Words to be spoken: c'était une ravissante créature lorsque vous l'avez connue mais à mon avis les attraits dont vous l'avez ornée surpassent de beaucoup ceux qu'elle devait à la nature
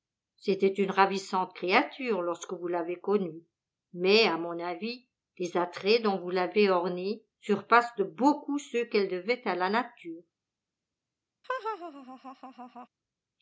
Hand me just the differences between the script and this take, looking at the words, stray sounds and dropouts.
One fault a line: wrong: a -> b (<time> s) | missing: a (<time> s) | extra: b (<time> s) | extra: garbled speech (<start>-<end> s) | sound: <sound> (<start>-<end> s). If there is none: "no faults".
sound: laugh (11.4-12.9 s)